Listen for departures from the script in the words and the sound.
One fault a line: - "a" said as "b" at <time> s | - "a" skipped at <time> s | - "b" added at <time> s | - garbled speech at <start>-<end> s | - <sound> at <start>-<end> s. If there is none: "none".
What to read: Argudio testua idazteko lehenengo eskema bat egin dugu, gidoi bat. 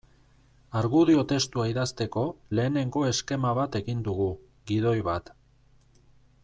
none